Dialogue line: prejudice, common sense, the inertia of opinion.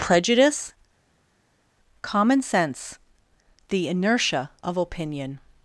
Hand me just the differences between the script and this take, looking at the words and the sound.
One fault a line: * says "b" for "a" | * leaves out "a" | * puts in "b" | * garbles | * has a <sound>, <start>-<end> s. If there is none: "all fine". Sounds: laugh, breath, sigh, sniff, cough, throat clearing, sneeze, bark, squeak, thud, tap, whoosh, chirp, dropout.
all fine